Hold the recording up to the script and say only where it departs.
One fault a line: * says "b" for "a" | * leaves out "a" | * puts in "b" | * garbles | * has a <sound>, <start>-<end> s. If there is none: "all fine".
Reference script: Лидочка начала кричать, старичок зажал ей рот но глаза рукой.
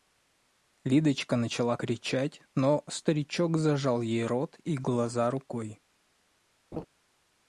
* puts in "но"
* says "и" for "но"
* has a laugh, 6.7-6.9 s